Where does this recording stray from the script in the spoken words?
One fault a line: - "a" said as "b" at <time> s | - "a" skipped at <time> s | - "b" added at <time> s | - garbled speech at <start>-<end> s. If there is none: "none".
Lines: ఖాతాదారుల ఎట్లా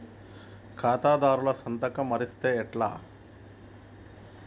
- "సంతకం మరిస్తే" added at 1.5 s